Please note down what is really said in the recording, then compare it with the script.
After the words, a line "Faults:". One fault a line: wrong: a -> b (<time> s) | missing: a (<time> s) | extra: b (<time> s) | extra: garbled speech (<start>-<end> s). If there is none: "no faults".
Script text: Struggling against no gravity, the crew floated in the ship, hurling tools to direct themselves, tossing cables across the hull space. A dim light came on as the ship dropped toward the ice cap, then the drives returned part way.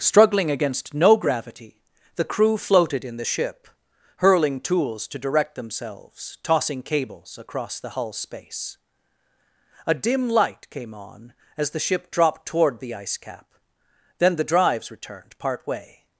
Struggling against no gravity, the crew floated in the ship, hurling tools to direct themselves, tossing cables across the hull space. A dim light came on as the ship dropped toward the ice cap, then the drives returned part way.
Faults:
no faults